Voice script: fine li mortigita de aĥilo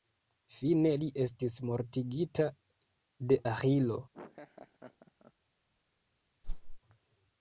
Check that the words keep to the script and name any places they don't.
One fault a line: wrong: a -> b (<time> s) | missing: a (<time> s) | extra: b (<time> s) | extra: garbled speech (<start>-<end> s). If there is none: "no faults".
extra: estis (1.2 s)